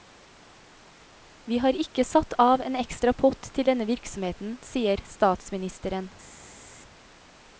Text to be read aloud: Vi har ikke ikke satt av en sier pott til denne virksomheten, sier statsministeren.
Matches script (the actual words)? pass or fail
fail